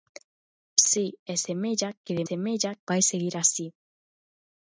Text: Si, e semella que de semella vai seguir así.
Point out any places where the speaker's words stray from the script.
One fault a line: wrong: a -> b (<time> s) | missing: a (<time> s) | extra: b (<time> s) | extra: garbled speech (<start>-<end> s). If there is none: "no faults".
no faults